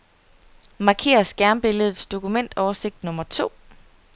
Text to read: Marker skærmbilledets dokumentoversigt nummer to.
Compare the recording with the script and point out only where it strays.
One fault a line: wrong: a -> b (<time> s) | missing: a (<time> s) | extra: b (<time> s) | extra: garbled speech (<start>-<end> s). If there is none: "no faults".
no faults